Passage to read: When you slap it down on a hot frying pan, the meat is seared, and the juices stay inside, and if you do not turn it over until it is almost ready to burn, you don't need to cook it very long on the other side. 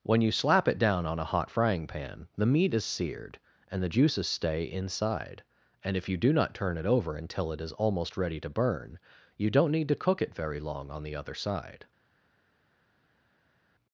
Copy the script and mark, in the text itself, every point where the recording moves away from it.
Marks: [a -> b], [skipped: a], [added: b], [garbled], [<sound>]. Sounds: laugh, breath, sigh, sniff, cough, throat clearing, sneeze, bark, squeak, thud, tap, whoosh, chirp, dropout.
When you slap it down on a hot frying pan, the meat is seared, and the juices stay inside, and if you do not turn it over until it is almost ready to burn, you don't need to cook it very long on the other side.